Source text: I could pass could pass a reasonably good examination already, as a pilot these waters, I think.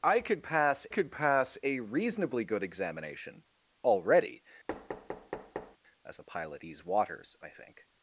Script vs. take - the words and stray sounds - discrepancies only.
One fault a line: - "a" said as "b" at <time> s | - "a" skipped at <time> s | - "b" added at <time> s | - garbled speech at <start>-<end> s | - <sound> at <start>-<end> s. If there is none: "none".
- thud at 4.7-5.8 s